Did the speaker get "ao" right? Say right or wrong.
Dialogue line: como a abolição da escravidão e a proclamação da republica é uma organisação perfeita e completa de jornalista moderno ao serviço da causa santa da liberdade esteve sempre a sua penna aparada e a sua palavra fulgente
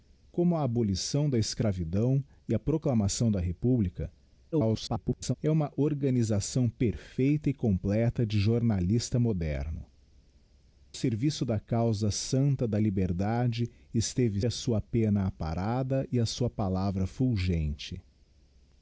wrong